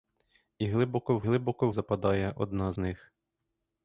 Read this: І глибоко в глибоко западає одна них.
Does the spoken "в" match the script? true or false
true